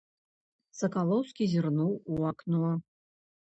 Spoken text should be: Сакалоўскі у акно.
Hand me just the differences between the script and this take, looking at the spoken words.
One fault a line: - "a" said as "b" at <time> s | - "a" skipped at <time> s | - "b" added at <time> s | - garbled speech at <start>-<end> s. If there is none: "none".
- "зірнуў" added at 1.5 s